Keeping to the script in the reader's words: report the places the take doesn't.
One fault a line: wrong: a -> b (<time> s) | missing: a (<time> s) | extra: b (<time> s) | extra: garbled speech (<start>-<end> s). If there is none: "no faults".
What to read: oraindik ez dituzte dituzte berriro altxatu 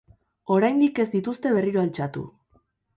missing: dituzte (1.6 s)